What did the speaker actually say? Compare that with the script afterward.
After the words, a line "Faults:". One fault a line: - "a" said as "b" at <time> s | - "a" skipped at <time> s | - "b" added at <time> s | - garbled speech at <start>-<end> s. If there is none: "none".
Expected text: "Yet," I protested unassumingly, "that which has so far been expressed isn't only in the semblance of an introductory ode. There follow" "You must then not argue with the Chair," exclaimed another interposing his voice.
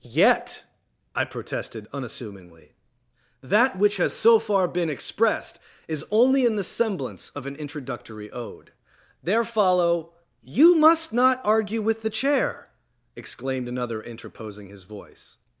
"Yet," I protested unassumingly, "that which has so far been expressed is only in the semblance of an introductory ode. There follow" "You must not argue with the Chair," exclaimed another interposing his voice.
Faults:
- "isn't" said as "is" at 5.9 s
- "then" skipped at 11.1 s